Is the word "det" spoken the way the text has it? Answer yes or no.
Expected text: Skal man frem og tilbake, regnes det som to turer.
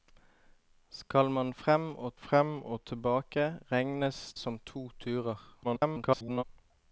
no